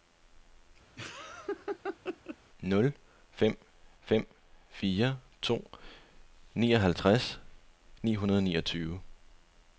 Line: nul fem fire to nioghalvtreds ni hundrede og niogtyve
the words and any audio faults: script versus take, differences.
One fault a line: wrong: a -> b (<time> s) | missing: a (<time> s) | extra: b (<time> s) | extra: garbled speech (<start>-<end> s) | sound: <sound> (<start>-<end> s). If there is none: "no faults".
sound: laugh (1.0-2.4 s)
extra: fem (4.0 s)